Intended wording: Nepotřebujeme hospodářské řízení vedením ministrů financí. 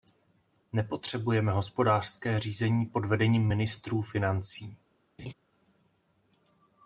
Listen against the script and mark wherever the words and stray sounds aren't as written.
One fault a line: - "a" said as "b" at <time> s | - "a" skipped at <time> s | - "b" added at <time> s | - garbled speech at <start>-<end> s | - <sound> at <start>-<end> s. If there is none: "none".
- "pod" added at 2.9 s
- laugh at 5.2-5.3 s